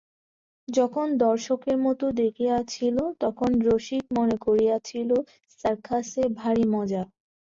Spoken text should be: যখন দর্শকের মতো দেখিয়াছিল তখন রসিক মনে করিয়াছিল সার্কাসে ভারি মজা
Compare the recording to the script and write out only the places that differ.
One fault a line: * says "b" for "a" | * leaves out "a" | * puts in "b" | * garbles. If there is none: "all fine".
all fine